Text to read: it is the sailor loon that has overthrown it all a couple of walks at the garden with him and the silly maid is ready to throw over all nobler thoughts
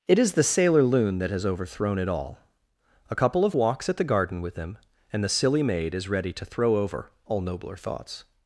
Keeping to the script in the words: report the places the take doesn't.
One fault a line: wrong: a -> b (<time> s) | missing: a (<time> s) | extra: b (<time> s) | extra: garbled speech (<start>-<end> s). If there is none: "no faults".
no faults